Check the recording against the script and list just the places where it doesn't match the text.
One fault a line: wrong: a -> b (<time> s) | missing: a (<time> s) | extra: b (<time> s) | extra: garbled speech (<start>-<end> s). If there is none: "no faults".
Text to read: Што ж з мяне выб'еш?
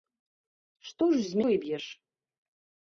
missing: мяне (1.4 s)